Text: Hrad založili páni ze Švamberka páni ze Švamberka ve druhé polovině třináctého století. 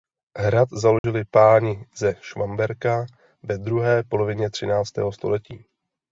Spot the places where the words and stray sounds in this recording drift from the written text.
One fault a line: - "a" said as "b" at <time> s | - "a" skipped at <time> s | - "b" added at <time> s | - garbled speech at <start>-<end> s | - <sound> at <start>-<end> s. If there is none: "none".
- dropout at 1.0-1.0 s
- "páni ze Švamberka" skipped at 3.0 s